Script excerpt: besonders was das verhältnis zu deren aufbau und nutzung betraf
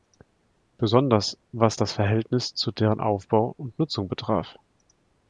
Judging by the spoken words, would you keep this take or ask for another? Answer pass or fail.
pass